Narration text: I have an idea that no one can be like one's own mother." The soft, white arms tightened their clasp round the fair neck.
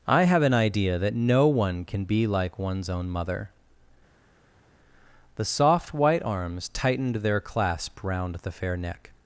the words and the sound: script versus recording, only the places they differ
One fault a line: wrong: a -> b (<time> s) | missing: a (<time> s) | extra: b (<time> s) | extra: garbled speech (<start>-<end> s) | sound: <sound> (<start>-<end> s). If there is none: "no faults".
no faults